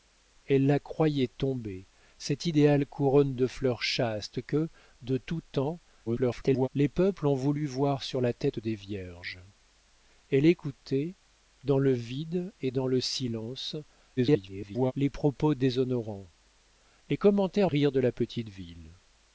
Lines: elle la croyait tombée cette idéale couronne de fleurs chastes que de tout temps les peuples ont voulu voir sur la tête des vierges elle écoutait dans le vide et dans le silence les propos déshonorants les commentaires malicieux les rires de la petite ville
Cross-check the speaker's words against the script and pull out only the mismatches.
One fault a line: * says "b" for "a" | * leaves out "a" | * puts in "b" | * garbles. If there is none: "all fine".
* garbles
* garbles
* leaves out "malicieux les"